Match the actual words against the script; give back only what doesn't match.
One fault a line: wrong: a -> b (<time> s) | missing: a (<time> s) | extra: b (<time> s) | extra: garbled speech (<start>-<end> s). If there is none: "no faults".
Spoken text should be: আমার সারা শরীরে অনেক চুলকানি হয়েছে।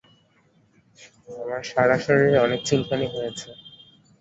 no faults